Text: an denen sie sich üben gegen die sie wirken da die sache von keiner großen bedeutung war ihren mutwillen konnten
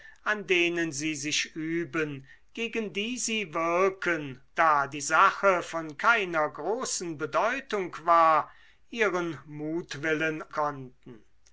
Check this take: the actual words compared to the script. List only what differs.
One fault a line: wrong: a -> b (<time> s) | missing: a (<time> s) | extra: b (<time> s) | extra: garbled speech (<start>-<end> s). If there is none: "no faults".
no faults